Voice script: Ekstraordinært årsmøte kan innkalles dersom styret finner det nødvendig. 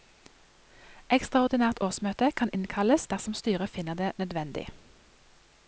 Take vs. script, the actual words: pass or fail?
pass